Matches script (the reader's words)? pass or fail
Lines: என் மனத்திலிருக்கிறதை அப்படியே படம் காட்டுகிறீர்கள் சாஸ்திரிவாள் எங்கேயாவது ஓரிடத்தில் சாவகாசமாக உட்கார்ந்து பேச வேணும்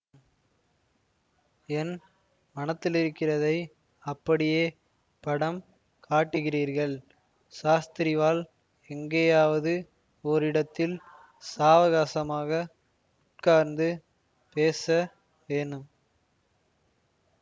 pass